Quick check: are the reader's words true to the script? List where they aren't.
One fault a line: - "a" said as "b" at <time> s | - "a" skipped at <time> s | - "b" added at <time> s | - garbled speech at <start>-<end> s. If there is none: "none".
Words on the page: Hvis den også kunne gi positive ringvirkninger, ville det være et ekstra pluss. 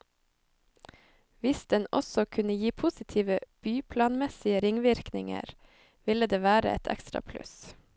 - "byplanmessige" added at 3.6 s